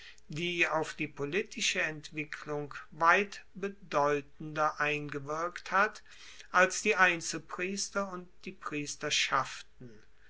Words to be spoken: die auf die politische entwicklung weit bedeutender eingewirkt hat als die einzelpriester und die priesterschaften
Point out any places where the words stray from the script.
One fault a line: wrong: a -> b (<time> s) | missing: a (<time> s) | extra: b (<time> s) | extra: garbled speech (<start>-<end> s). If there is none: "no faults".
no faults